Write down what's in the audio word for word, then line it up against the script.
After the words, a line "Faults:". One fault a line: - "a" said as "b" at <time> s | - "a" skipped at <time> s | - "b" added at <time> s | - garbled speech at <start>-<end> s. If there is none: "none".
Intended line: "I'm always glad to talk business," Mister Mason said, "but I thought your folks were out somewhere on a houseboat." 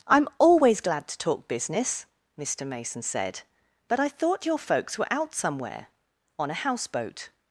"I'm always glad to talk business," Mister Mason said, "but I thought your folks were out somewhere on a houseboat."
Faults:
none